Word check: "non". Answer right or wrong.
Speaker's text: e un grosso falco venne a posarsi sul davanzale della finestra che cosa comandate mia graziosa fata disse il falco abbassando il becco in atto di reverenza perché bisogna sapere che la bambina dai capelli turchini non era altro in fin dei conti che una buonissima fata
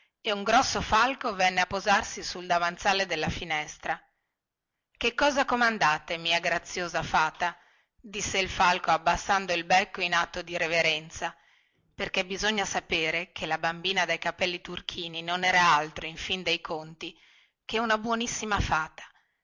right